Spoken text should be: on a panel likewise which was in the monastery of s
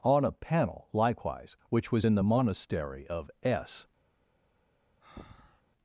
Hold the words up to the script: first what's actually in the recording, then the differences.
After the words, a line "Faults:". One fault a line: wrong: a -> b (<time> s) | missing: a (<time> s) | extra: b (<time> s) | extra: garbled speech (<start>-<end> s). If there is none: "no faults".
on a panel likewise which was in the monastery of s
Faults:
no faults